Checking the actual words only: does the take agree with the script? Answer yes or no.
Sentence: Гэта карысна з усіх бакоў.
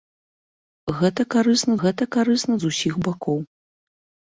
no